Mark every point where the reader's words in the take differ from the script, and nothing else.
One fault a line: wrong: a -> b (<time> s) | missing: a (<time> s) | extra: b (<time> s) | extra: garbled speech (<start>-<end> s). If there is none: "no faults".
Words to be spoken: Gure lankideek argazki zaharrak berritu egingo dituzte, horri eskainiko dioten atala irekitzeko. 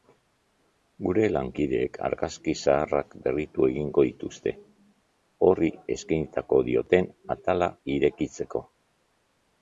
no faults